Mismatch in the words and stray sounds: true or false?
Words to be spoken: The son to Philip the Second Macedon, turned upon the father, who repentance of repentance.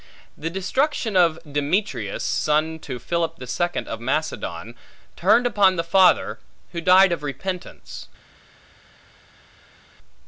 true